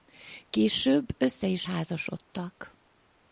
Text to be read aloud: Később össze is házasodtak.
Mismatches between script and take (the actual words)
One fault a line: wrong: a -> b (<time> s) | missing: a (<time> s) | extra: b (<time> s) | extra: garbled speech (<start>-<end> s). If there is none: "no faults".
no faults